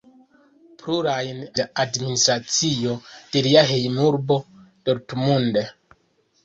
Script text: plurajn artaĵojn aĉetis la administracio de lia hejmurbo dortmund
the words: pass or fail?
fail